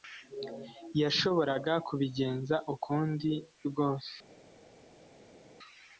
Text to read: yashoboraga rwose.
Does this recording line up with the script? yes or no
no